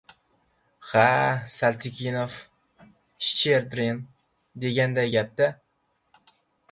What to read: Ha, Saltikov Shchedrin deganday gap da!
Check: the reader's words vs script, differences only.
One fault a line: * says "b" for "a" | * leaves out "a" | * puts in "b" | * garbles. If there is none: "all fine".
all fine